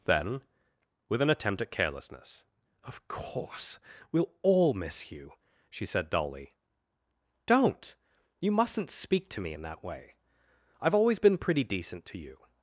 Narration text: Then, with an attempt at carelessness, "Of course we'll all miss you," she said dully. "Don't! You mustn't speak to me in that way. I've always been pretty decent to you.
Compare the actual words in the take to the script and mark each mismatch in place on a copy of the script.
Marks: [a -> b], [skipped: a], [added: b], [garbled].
Then, with an attempt at carelessness, "Of course we'll all miss you," she said dully. "Don't! You mustn't speak to me in that way. I've always been pretty decent to you.